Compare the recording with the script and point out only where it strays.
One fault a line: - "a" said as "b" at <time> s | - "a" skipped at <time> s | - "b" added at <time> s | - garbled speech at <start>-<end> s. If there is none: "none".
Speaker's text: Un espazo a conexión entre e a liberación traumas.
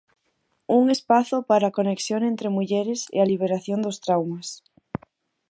- "para" added at 1.5 s
- "mulleres" added at 2.6 s
- "dos" added at 3.9 s